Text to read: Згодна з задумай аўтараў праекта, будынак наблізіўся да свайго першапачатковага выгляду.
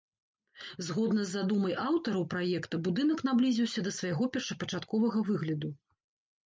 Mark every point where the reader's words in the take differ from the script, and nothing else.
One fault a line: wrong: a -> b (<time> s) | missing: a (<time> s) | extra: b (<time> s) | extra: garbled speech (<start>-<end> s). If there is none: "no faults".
no faults